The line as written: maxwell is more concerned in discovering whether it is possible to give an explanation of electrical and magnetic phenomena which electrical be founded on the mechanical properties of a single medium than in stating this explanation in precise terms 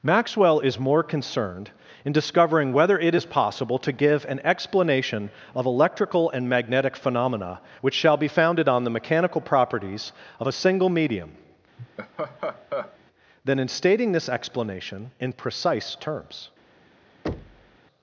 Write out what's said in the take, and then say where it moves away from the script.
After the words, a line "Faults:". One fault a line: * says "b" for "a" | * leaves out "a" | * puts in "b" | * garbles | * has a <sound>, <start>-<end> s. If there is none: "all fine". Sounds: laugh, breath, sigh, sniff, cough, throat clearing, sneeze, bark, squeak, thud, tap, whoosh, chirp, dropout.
maxwell is more concerned in discovering whether it is possible to give an explanation of electrical and magnetic phenomena which shall be founded on the mechanical properties of a single medium than in stating this explanation in precise terms
Faults:
* says "shall" for "electrical"
* has a laugh, 11.8-13.0 s
* has a thud, 17.2-17.8 s